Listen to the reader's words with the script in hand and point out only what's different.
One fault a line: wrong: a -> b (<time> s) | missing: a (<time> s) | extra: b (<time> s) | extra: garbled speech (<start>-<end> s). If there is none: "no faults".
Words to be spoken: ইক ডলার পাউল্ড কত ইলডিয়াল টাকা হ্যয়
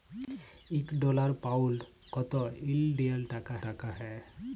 extra: টাকা (3.7 s)